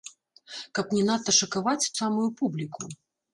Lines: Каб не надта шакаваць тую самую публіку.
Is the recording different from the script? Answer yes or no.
yes